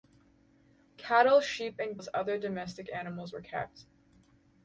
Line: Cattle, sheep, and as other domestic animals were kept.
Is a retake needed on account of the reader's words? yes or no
no